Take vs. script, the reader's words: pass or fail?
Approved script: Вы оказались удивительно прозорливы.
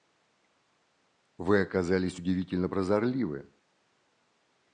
pass